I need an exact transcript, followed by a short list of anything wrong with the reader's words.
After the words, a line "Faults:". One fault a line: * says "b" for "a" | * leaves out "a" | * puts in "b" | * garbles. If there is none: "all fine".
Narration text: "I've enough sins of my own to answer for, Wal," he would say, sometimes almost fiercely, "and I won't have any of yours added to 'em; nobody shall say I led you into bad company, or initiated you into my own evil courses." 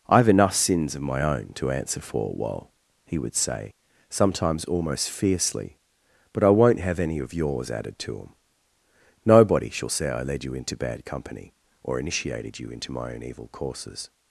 "I've enough sins of my own to answer for, Wal," he would say, sometimes almost fiercely, "but I won't have any of yours added to 'em; nobody shall say I led you into bad company, or initiated you into my own evil courses."
Faults:
* says "but" for "and"